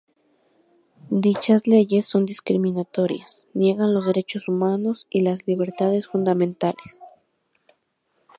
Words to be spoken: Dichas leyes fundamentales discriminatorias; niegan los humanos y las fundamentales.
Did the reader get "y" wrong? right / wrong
right